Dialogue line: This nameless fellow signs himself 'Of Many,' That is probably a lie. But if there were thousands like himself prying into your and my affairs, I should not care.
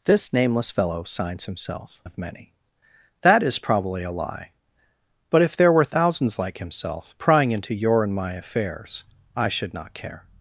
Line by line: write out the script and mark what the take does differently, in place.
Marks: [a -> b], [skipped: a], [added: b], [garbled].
This nameless fellow signs himself 'Of Many,' That is probably a lie. But if there were thousands like himself prying into your and my affairs, I should not care.